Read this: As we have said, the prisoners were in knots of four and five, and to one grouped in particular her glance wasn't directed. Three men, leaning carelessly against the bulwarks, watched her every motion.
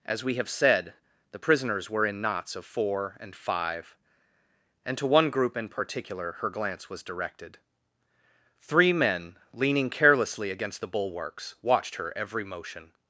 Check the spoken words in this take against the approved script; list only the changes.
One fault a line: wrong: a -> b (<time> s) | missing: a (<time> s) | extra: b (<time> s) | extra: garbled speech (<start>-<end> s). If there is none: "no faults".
wrong: grouped -> group (5.3 s)
wrong: wasn't -> was (6.9 s)